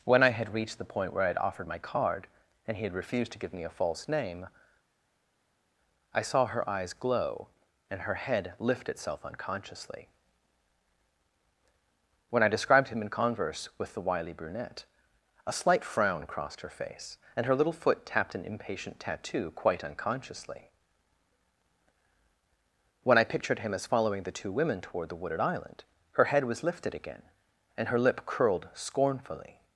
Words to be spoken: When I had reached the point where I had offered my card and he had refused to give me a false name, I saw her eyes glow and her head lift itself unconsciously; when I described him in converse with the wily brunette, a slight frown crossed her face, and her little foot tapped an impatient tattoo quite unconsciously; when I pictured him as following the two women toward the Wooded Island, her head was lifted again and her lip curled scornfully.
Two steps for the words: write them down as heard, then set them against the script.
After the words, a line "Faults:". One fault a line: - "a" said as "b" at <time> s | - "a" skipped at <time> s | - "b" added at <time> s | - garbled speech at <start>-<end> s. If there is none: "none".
When I had reached the point where I had offered my card and he had refused to give me a false name, I saw her eyes glow and her head lift itself unconsciously; when I described him in converse with the wily brunette, a slight frown crossed her face, and her little foot tapped an impatient tattoo quite unconsciously; when I pictured him as following the two women toward the Wooded Island, her head was lifted again and her lip curled scornfully.
Faults:
none